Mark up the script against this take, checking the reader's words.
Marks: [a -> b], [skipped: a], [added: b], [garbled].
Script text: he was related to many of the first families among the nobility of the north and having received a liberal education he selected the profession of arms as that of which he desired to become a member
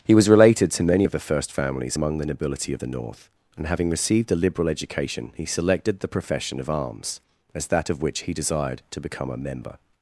he was related to many of the first families among the nobility of the north and having received a liberal education he selected the profession of arms as that of which he desired to become a member